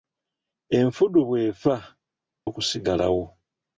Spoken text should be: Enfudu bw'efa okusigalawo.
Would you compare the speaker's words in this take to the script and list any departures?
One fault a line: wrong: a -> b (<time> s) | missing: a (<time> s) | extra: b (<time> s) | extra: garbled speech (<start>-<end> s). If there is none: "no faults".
no faults